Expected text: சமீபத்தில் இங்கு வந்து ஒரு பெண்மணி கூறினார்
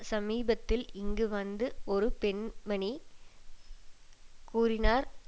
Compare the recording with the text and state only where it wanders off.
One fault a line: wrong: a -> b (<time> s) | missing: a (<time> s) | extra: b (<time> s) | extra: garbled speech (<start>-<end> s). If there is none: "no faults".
no faults